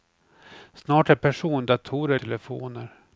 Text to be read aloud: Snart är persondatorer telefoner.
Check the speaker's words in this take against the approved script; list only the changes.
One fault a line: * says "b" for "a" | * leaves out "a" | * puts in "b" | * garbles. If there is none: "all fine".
all fine